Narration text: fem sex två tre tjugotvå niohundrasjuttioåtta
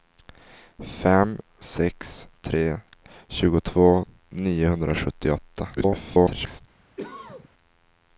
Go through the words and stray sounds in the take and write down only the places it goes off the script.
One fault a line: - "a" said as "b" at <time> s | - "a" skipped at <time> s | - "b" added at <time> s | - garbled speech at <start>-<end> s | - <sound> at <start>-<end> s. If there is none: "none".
- "två" skipped at 2.3 s
- garbled speech at 5.8-6.6 s
- cough at 7.0-7.5 s